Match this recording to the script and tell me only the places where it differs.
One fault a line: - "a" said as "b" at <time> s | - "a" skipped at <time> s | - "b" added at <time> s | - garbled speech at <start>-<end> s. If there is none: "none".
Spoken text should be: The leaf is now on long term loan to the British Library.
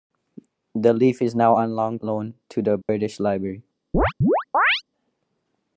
- "term" skipped at 2.0 s